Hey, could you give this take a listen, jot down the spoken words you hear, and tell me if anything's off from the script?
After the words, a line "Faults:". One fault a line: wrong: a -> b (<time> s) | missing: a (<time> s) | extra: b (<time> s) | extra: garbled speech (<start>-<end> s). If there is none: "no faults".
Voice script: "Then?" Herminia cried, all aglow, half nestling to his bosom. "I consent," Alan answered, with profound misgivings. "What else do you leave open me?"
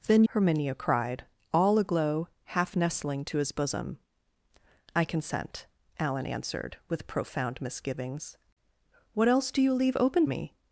"Then?" Herminia cried, all aglow, half nestling to his bosom. "I consent," Alan answered, with profound misgivings. "What else do you leave open me?"
Faults:
no faults